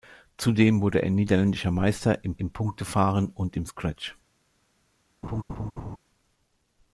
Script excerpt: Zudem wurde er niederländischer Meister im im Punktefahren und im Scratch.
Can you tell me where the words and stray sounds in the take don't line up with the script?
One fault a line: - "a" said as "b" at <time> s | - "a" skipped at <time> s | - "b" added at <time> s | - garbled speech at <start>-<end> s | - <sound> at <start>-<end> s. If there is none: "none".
- laugh at 5.2-6.0 s